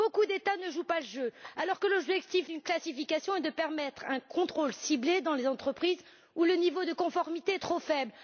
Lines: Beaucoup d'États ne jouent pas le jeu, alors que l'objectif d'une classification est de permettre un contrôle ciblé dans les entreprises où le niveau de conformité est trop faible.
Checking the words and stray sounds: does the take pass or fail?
pass